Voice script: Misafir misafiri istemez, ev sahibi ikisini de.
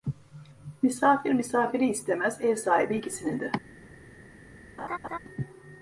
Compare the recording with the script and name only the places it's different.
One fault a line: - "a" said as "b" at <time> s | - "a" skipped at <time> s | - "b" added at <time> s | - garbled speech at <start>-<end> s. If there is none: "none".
none